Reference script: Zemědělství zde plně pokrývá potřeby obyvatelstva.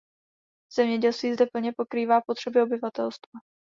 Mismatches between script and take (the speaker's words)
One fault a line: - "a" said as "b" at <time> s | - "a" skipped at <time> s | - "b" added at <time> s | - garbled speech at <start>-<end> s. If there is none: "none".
none